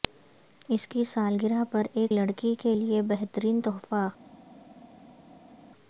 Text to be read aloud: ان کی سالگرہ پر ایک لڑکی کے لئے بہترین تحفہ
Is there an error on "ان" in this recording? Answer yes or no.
yes